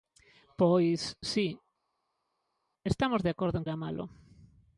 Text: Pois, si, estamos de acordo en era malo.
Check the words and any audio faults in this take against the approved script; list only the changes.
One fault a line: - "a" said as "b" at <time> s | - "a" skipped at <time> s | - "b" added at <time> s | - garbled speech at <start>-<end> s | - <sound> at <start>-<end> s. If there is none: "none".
none